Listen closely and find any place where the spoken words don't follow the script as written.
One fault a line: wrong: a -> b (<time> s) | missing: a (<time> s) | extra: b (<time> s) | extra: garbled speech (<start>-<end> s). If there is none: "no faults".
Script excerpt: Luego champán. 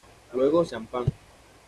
no faults